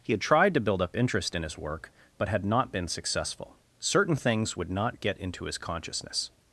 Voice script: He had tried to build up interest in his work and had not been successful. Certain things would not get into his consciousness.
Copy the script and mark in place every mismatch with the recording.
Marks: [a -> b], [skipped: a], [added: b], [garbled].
He had tried to build up interest in his work [and -> but] had not been successful. Certain things would not get into his consciousness.